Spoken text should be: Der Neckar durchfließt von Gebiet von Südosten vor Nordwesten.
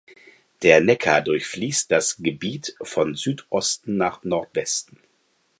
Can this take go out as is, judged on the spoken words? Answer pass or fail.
fail